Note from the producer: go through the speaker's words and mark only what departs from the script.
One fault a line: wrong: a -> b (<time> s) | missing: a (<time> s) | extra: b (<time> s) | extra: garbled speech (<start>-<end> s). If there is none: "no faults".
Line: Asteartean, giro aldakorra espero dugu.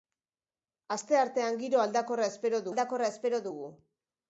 extra: aldakorra espero (2.7 s)